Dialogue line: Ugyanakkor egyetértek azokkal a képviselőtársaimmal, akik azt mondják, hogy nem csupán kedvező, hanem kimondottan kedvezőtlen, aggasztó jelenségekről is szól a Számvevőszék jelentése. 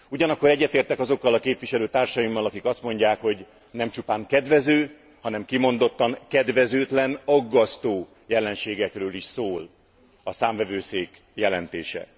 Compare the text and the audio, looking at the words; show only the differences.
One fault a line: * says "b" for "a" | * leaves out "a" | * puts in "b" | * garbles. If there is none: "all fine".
all fine